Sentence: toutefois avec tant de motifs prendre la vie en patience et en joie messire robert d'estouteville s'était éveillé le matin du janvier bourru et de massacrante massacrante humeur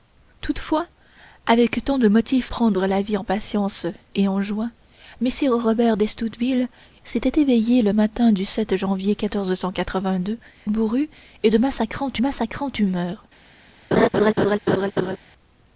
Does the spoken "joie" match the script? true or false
true